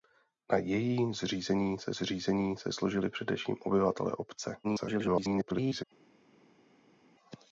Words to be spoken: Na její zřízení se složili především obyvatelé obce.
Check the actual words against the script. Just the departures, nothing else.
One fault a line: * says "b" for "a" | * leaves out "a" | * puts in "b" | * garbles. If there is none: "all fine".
* puts in "zřízení se"
* garbles